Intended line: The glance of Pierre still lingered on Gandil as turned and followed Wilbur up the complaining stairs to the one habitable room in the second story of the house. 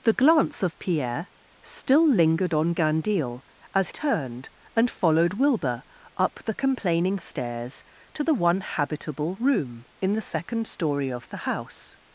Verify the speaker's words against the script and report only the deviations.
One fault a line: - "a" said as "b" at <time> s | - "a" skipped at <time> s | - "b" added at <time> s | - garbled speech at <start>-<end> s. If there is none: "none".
none